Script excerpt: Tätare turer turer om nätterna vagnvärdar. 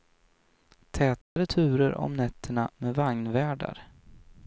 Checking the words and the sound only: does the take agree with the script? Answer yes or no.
no